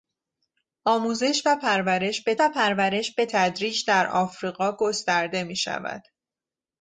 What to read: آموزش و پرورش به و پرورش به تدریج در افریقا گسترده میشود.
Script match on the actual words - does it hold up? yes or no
yes